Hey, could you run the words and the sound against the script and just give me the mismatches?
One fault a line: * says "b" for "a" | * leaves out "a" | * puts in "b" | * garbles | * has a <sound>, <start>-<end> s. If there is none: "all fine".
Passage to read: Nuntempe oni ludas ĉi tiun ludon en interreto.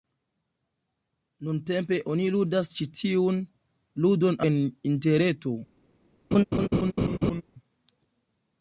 * has a laugh, 6.3-7.4 s